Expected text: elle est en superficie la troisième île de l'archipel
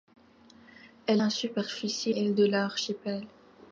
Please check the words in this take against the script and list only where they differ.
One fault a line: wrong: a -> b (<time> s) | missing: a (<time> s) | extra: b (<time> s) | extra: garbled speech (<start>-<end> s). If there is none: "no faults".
missing: est (1.2 s)
missing: la troisième (2.1 s)